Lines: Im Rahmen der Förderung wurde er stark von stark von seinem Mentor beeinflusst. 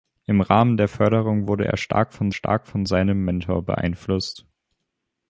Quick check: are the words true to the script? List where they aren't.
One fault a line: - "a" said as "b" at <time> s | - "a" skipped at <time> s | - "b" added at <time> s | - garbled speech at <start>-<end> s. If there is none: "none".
none